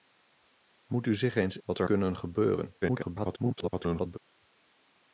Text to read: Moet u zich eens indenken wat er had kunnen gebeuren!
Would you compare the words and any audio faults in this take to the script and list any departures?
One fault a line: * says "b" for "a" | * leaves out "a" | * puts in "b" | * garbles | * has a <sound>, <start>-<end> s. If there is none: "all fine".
* leaves out "indenken"
* leaves out "had"
* garbles